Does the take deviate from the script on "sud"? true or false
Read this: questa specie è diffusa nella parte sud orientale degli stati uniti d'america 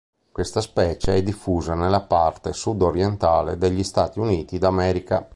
false